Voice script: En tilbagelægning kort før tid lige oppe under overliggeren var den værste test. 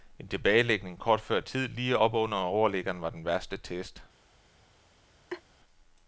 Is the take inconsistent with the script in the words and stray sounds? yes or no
yes